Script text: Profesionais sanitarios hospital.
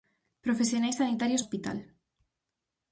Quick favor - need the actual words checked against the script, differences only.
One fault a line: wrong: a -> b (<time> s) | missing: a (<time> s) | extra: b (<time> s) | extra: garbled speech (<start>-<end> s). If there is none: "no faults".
no faults